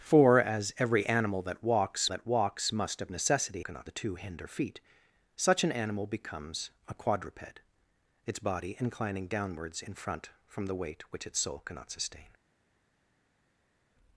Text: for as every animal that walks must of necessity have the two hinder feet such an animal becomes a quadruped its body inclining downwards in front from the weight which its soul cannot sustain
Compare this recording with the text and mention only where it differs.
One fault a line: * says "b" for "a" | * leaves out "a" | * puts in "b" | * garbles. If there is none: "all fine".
* puts in "that walks"
* says "cannot" for "have"